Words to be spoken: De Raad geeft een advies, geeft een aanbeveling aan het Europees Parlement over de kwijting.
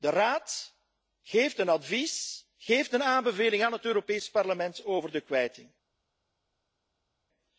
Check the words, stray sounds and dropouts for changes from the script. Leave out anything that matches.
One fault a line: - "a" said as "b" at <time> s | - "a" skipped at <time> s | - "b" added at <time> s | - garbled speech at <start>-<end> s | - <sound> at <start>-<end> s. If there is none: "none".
none